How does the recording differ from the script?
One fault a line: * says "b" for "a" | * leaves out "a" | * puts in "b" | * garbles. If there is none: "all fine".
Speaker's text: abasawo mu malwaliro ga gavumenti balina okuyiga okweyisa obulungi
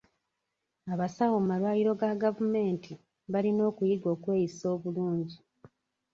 all fine